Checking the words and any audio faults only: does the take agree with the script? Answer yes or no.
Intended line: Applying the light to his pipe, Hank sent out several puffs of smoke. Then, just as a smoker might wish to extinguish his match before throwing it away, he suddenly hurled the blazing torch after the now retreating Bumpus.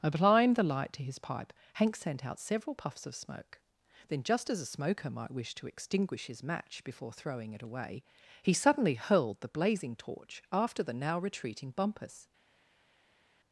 yes